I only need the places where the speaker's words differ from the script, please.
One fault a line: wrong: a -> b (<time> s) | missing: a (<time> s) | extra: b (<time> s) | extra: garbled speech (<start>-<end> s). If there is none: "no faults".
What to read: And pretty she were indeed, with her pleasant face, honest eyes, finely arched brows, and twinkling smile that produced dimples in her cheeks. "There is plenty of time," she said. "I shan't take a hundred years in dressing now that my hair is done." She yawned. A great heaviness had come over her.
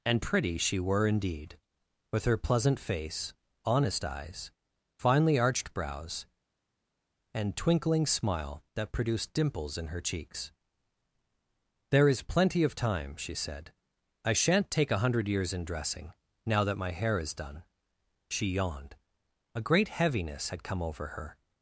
no faults